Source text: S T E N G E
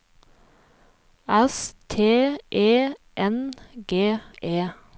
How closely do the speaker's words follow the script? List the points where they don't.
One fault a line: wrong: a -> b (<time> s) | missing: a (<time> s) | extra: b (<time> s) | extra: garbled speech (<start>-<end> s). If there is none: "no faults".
no faults